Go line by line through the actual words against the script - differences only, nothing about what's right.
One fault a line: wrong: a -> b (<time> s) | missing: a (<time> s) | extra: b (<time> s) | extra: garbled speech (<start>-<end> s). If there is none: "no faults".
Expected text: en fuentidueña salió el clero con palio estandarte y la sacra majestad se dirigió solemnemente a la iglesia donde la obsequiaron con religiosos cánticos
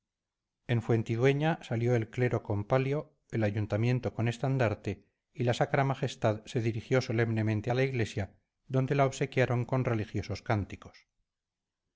extra: el ayuntamiento con (3.3 s)